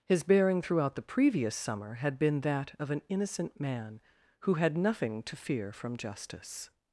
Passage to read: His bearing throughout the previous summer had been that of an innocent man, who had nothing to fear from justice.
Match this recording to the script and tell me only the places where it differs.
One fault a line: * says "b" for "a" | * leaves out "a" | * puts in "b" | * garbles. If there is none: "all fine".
all fine